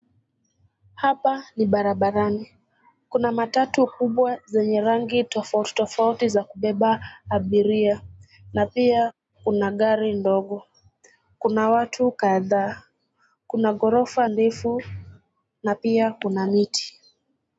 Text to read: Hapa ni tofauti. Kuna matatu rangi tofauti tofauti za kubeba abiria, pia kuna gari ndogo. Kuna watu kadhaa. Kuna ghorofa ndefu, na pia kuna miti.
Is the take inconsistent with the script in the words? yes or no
yes